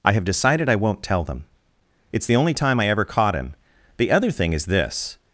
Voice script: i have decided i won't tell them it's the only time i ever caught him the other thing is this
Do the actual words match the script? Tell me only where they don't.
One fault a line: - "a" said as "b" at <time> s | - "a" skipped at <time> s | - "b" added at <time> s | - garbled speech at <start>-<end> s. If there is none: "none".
none